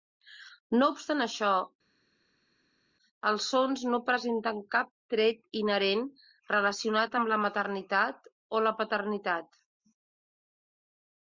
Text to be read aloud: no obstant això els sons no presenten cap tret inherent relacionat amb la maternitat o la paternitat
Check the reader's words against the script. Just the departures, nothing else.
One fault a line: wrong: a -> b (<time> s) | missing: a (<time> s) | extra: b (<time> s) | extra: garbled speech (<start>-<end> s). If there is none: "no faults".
no faults